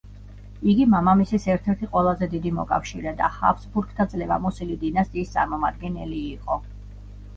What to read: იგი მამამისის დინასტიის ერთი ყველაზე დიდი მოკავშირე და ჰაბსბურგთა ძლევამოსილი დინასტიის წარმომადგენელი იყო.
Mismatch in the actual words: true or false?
true